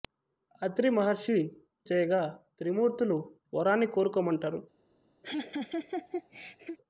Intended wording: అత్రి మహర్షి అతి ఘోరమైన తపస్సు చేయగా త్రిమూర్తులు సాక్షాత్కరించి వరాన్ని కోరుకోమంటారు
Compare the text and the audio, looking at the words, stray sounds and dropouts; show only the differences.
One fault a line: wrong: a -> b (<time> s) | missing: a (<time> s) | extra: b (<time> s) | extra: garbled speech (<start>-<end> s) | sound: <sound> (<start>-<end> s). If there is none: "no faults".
missing: అతి ఘోరమైన తపస్సు (1.4 s)
missing: సాక్షాత్కరించి (3.2 s)
sound: laugh (5.2-6.8 s)